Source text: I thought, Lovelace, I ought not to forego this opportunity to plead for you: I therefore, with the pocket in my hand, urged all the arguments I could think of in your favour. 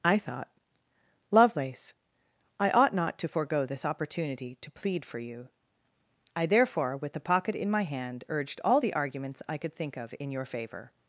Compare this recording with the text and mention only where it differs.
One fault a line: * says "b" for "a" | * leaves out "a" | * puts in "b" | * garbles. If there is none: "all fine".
all fine